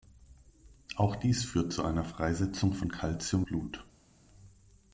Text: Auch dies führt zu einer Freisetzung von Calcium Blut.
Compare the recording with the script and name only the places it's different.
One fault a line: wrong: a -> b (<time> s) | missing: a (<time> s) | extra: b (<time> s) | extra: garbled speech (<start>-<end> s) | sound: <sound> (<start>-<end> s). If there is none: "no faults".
no faults